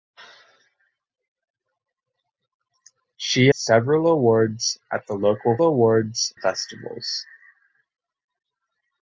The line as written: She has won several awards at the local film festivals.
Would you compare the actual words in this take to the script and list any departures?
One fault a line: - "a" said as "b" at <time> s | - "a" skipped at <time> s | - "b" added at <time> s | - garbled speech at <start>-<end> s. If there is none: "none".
- "has won" skipped at 3.5 s
- "film" said as "awards" at 5.6 s